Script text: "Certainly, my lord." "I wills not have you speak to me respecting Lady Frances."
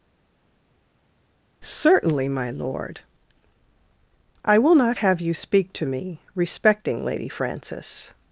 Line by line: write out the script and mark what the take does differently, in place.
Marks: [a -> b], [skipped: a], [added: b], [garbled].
"Certainly, my lord." "I [wills -> will] not have you speak to me respecting Lady Frances."